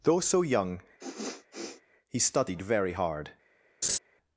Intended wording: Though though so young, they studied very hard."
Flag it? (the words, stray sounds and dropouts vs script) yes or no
yes